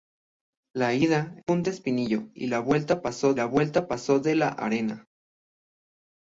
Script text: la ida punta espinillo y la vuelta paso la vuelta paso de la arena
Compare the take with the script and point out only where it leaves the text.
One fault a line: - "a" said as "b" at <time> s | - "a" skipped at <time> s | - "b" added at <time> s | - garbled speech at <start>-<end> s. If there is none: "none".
none